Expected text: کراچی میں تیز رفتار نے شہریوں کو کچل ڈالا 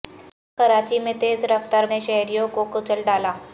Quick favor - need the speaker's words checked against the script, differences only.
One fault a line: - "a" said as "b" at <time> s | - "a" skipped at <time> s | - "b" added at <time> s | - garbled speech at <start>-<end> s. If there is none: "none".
none